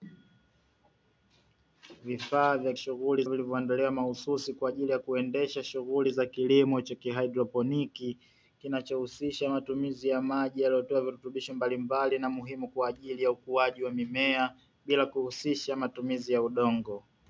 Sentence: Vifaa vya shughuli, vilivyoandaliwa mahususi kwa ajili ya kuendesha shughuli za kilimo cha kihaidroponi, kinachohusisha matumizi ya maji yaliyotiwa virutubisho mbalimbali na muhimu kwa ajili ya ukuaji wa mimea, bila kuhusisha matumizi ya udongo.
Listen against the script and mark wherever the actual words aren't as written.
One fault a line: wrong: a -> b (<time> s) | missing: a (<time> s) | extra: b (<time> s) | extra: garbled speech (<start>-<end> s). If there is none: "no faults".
no faults